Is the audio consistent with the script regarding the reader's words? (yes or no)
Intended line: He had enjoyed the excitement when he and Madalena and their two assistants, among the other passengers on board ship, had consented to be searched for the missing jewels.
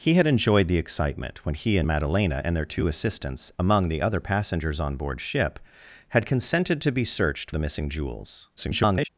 no